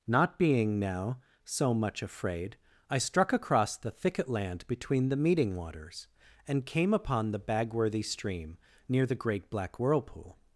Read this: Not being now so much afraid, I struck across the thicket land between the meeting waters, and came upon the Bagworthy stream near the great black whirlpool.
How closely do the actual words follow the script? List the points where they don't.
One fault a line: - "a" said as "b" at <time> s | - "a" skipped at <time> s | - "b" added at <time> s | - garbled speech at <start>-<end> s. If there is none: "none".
none